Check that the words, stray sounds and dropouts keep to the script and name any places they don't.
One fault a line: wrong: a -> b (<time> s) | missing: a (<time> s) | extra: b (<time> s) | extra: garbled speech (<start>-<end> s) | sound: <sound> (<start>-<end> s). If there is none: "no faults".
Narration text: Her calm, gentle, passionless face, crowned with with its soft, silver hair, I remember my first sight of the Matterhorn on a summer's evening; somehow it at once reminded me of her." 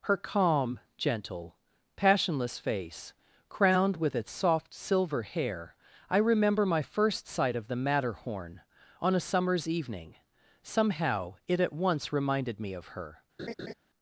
missing: with (4.2 s)
sound: laugh (13.4-13.7 s)